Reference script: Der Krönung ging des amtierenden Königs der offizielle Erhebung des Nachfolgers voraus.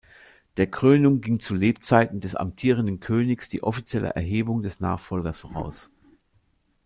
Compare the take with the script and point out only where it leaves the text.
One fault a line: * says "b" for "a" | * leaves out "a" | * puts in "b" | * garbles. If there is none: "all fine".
* puts in "zu Lebzeiten"
* says "die" for "der"